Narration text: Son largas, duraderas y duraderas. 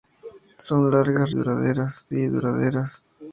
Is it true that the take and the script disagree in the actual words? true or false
false